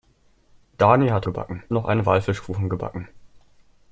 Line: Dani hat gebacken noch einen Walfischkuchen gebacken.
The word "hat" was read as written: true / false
true